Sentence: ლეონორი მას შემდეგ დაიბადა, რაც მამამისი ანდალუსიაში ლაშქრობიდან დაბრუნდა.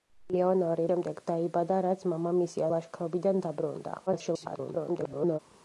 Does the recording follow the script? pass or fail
fail